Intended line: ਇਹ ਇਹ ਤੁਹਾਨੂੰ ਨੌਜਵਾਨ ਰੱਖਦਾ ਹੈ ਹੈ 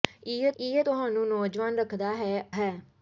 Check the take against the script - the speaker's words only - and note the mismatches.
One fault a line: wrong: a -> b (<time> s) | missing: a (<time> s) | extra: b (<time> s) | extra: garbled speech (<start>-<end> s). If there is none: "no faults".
no faults